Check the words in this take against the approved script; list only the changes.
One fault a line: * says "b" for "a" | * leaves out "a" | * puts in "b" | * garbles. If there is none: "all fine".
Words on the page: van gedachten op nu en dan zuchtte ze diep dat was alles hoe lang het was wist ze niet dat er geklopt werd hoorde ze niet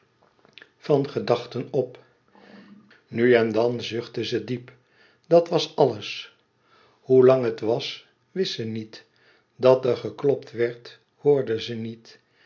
all fine